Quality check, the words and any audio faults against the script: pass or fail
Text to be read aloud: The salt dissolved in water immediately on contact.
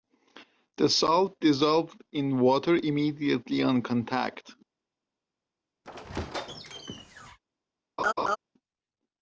fail